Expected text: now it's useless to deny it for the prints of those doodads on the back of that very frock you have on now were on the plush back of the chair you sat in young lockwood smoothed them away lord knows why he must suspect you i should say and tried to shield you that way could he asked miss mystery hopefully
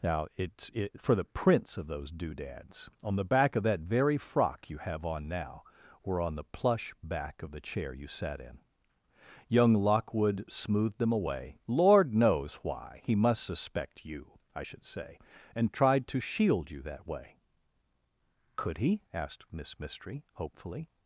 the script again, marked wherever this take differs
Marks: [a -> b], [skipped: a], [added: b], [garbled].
now it's [skipped: useless to deny] it for the prints of those doodads on the back of that very frock you have on now were on the plush back of the chair you sat in young lockwood smoothed them away lord knows why he must suspect you i should say and tried to shield you that way could he asked miss mystery hopefully